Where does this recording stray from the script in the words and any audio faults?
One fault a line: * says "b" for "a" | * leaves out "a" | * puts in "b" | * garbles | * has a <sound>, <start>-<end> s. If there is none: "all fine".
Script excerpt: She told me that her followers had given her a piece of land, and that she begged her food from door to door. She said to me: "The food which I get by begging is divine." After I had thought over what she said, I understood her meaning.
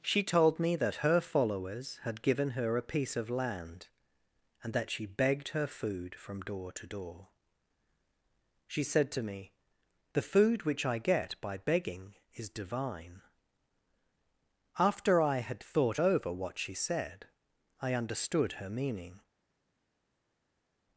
all fine